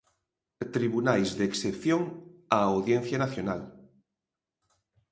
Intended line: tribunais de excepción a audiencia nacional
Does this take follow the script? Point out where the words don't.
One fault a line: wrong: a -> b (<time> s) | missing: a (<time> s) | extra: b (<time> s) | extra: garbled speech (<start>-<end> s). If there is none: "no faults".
no faults